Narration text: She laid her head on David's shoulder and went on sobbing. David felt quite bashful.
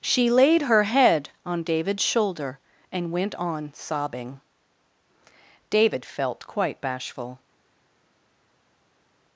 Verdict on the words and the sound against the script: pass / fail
pass